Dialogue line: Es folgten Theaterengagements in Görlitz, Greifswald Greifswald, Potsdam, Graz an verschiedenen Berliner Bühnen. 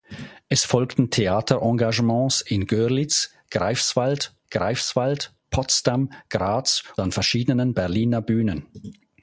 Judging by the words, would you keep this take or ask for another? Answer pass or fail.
pass